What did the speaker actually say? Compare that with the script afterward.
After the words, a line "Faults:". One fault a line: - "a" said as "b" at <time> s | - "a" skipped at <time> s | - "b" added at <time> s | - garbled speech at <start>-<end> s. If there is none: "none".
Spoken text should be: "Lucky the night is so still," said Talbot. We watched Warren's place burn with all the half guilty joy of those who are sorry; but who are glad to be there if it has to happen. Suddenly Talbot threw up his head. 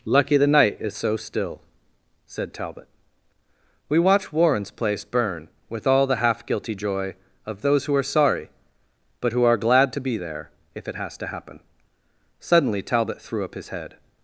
"Lucky the night is so still," said Talbot. We watch Warren's place burn with all the half guilty joy of those who are sorry; but who are glad to be there if it has to happen. Suddenly Talbot threw up his head.
Faults:
- "watched" said as "watch" at 4.0 s